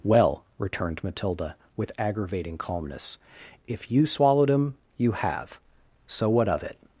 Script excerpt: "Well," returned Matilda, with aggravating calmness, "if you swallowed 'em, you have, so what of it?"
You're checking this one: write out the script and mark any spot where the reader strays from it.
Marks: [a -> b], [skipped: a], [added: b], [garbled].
"Well," returned Matilda, with aggravating calmness, "if you swallowed 'em, you have, so what of it?"